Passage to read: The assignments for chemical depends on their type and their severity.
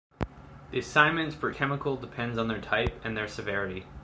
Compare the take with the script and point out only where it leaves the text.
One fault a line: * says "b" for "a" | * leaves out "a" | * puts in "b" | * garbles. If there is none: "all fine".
all fine